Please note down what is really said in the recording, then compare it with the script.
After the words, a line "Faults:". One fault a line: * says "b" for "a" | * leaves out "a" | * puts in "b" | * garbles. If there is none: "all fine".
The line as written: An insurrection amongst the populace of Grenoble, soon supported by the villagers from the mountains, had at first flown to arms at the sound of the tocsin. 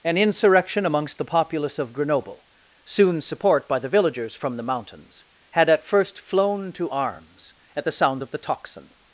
An insurrection amongst the populace of Grenoble, soon support by the villagers from the mountains, had at first flown to arms at the sounds of the tocsin.
Faults:
* says "support" for "supported"
* says "sounds" for "sound"